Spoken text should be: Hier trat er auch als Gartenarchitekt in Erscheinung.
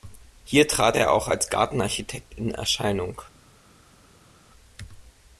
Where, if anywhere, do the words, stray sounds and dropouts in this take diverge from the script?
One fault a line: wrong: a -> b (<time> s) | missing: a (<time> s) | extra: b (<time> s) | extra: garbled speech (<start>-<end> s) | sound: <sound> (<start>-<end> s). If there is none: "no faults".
no faults